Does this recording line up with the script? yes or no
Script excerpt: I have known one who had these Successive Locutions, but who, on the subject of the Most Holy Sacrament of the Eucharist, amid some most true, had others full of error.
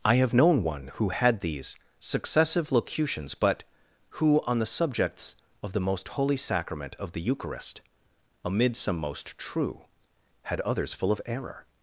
no